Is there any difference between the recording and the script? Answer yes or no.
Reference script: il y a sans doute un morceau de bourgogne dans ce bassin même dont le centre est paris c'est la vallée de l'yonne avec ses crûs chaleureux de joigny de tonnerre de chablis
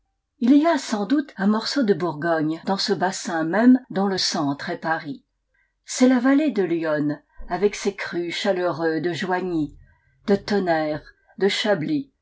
no